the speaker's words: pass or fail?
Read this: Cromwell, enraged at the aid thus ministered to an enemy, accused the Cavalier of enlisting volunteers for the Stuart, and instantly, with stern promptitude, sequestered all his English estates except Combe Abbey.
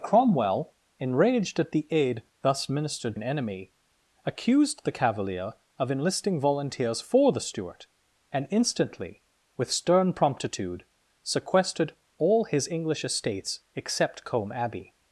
fail